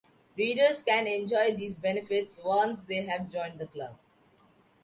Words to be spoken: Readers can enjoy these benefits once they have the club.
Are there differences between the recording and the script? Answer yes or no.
yes